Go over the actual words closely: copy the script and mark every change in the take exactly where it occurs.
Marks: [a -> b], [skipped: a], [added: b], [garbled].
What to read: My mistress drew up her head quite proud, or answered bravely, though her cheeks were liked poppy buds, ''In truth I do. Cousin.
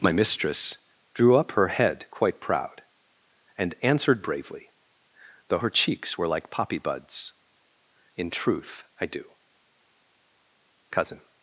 My mistress drew up her head quite proud, [or -> and] answered bravely, though her cheeks were [liked -> like] poppy buds, ''In truth I do. Cousin.